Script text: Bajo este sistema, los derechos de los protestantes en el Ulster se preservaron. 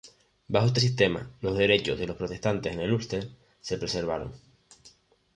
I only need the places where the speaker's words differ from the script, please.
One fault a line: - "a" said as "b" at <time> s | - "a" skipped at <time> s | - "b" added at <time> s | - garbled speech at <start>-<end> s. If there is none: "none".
none